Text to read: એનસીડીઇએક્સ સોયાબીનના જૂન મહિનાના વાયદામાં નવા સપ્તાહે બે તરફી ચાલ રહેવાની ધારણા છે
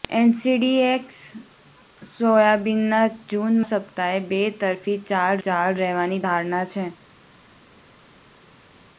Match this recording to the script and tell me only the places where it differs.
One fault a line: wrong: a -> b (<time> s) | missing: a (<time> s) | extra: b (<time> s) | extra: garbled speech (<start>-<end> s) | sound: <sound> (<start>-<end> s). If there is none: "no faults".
missing: મહિનાના વાયદામાં નવા (3.6 s)
extra: ચાલ (5.4 s)